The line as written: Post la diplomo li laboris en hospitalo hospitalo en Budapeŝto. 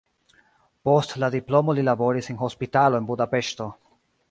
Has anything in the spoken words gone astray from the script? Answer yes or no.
yes